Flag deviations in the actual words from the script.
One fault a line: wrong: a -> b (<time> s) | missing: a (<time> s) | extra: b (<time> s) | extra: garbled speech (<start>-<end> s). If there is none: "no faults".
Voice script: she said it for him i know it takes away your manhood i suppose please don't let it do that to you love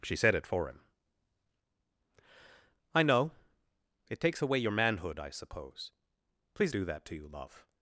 missing: don't let it (6.7 s)